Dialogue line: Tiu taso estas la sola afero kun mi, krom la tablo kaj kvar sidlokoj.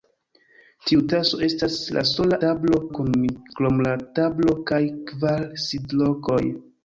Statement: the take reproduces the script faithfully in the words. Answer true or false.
false